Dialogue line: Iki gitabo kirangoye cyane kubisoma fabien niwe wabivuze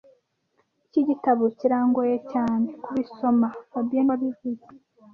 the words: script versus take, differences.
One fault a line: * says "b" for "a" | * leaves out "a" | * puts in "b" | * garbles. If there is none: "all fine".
* leaves out "niwe"